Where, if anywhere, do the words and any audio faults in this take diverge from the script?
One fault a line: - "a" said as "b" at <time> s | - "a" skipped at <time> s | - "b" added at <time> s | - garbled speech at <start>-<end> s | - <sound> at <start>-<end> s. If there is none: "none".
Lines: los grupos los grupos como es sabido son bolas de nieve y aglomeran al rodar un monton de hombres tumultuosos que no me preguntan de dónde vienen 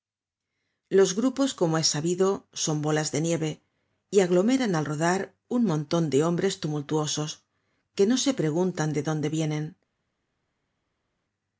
- "los grupos" skipped at 1.5 s
- "me" said as "se" at 8.2 s